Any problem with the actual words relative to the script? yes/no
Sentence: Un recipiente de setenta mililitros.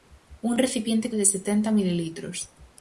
no